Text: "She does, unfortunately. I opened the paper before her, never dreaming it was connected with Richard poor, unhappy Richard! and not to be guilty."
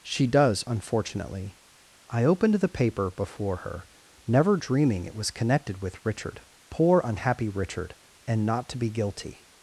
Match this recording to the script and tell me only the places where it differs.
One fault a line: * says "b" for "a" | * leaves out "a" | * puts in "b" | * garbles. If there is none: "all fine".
all fine